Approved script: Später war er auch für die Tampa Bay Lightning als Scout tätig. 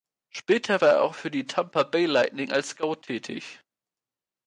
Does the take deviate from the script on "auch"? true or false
false